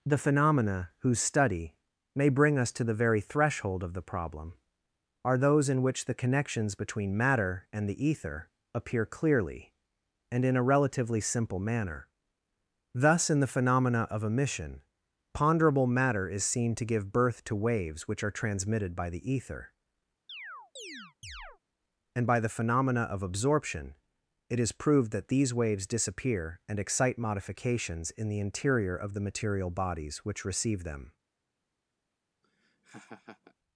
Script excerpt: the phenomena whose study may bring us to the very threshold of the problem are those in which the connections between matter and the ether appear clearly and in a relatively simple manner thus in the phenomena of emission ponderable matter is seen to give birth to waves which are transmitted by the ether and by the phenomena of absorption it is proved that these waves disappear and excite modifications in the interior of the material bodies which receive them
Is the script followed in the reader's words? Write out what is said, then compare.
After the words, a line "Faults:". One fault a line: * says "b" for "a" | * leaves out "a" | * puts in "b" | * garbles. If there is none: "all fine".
the phenomena whose study may bring us to the very threshold of the problem are those in which the connections between matter and the ether appear clearly and in a relatively simple manner thus in the phenomena of emission ponderable matter is seen to give birth to waves which are transmitted by the ether and by the phenomena of absorption it is proved that these waves disappear and excite modifications in the interior of the material bodies which receive them
Faults:
all fine